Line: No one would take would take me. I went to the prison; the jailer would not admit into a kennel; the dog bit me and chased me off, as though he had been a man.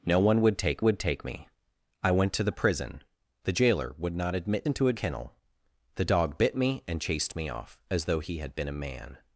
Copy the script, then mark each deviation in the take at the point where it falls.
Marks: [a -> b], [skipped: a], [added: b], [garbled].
No one would take would take me. I went to the prison; the jailer would not admit into a kennel; the dog bit me and chased me off, as though he had been a man.